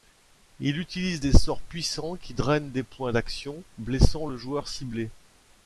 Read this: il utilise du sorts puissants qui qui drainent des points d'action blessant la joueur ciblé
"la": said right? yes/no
no